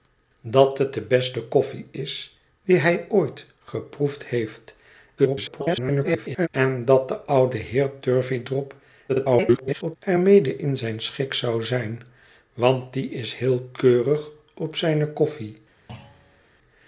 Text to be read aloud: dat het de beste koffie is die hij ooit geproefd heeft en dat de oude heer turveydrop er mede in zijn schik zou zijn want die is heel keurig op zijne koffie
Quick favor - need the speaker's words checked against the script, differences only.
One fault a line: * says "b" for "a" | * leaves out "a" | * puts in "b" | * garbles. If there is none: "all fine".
* garbles
* garbles